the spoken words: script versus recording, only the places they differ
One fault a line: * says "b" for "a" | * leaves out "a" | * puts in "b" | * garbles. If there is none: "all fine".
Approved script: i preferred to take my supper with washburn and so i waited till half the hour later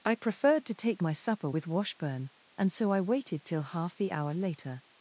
all fine